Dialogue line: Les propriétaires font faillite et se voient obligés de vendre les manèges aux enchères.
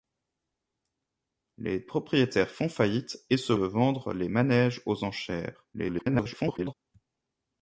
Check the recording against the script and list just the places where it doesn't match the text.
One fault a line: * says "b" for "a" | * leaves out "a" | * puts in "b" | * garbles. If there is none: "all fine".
* leaves out "voient obligés"
* garbles